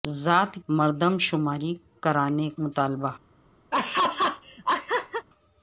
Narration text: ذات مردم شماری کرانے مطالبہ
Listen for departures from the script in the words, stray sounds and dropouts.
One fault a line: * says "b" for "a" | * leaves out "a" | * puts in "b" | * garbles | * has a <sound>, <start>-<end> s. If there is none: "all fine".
* has a laugh, 3.7-5.3 s